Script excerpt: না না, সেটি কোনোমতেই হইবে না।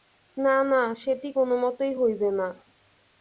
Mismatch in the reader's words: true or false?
false